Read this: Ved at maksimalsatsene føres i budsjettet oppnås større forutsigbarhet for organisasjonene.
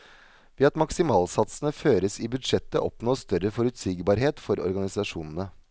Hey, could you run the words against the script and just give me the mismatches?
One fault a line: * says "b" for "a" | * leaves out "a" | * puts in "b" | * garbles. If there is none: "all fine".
all fine